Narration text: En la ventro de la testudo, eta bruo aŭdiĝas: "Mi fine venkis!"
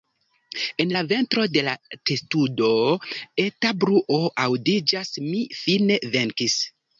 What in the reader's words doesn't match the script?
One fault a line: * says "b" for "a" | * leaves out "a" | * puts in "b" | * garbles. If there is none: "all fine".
all fine